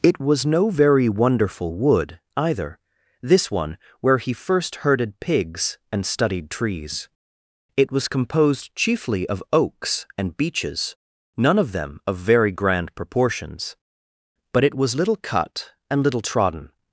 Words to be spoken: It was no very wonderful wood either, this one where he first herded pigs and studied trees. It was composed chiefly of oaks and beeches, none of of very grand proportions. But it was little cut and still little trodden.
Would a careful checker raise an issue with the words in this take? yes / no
yes